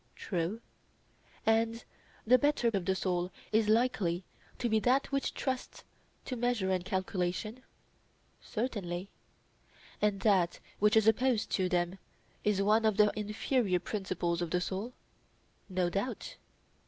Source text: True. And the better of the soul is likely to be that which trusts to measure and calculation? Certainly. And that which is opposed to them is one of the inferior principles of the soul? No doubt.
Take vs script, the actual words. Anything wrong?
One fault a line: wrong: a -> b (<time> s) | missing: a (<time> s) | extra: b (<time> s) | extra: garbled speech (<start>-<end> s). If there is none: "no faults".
no faults